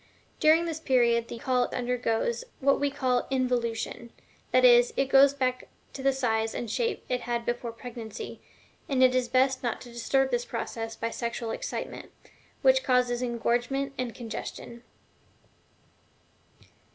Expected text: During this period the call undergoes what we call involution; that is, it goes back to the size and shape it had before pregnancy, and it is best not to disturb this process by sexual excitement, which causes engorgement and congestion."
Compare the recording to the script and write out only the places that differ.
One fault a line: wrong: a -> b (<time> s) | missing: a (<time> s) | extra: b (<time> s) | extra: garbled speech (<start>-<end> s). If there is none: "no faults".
no faults